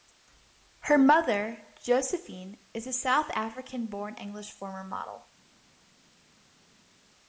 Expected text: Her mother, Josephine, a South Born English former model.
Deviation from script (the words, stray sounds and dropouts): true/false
true